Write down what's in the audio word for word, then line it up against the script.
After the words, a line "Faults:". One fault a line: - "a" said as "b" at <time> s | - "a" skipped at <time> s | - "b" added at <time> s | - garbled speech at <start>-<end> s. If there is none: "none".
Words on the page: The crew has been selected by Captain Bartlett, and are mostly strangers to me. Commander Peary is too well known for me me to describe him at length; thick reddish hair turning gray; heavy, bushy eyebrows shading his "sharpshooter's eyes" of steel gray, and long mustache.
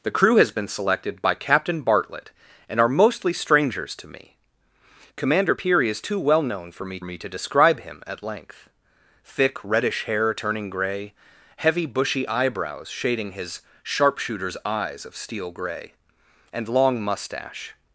The crew has been selected by Captain Bartlett, and are mostly strangers to me. Commander Peary is too well known for me me to describe him at length; thick reddish hair turning gray; heavy, bushy eyebrows shading his "sharpshooter's eyes" of steel gray, and long mustache.
Faults:
none